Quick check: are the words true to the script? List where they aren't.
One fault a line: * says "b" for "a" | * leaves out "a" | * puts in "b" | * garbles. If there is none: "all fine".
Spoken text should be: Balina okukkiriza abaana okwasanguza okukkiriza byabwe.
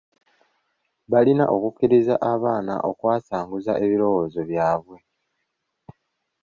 * says "ebirowoozo" for "okukkiriza"